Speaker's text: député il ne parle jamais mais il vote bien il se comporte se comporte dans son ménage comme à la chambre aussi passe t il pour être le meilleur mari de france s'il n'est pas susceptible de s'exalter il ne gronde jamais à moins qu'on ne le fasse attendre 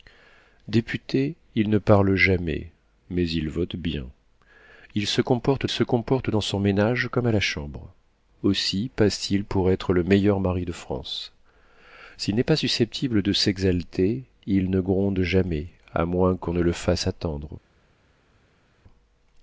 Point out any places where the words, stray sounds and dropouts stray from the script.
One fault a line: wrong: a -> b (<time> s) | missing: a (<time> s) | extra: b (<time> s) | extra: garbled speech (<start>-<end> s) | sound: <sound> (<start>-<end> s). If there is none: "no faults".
no faults